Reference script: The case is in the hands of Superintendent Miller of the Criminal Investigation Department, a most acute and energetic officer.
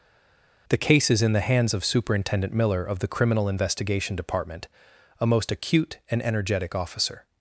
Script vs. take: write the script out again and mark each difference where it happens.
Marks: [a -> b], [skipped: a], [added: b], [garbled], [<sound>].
The case is in the hands of Superintendent Miller of the Criminal Investigation Department, a most acute and energetic officer.